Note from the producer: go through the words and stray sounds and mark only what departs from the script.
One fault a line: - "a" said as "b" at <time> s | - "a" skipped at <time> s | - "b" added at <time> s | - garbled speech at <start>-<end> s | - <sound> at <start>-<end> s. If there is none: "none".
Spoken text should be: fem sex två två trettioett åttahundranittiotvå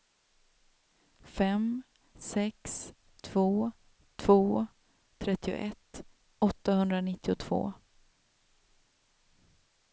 none